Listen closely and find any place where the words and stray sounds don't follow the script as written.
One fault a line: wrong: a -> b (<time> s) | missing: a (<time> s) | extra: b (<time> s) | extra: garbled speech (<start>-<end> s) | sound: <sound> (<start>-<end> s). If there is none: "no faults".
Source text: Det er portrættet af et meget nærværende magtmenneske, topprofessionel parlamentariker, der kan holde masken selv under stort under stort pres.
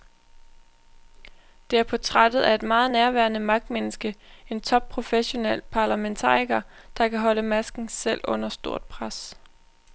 extra: en (4.5 s)
missing: under stort (8.8 s)